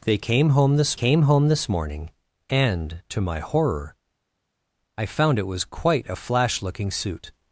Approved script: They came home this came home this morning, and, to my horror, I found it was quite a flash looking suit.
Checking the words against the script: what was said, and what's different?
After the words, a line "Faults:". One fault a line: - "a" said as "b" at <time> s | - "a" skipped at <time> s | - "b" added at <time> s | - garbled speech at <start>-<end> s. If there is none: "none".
They came home this came home this morning, and, to my horror, I found it was quite a flash looking suit.
Faults:
none